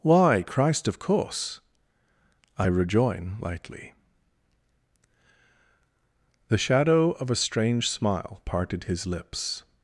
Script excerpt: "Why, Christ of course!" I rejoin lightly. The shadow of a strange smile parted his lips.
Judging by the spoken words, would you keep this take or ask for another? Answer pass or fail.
pass